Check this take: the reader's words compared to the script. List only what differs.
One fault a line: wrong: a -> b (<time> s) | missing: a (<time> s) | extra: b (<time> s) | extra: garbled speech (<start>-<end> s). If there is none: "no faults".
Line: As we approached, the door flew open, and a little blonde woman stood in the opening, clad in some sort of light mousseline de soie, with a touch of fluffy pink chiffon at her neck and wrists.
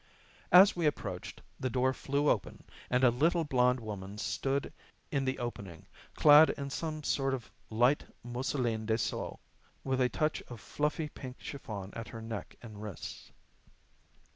no faults